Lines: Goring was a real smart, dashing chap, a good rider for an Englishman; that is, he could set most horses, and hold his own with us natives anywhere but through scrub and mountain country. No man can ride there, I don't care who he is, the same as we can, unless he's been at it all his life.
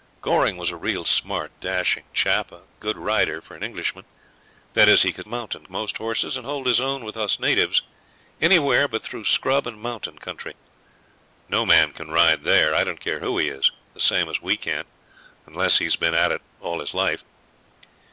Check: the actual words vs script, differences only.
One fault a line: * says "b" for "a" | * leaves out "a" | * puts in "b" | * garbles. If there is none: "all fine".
* says "mountain" for "set"